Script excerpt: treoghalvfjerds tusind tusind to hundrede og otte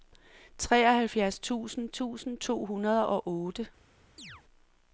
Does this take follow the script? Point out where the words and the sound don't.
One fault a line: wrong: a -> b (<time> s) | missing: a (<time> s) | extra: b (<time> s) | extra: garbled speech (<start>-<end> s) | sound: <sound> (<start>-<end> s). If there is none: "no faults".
sound: chirp (4.2-4.4 s)